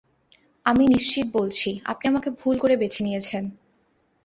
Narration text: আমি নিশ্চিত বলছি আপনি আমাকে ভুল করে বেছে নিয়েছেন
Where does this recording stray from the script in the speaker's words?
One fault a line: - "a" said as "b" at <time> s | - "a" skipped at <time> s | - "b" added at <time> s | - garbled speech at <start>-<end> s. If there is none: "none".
none